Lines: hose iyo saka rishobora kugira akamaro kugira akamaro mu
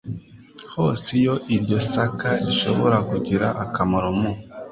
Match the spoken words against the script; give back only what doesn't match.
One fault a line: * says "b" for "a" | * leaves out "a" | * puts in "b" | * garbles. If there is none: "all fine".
* puts in "iryo"
* leaves out "kugira akamaro"